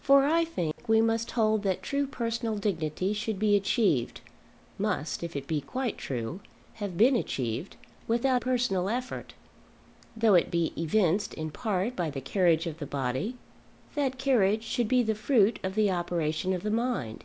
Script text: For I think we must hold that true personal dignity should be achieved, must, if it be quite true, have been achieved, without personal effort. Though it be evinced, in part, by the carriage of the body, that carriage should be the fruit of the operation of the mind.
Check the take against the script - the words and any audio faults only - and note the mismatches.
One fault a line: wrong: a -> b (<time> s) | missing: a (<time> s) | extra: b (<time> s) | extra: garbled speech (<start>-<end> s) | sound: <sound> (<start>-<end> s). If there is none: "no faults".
sound: dropout (0.7-0.8 s)